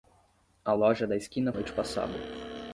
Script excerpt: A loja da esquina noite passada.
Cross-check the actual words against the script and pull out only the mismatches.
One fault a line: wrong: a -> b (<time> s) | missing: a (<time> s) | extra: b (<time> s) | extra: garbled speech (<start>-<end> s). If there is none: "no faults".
no faults